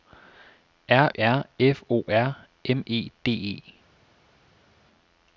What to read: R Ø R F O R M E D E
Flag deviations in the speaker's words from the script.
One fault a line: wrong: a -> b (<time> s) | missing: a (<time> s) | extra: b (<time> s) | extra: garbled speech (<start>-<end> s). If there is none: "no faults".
missing: Ø (1.1 s)